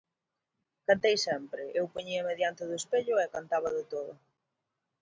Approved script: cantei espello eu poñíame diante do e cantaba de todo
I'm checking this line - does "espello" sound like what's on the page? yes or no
no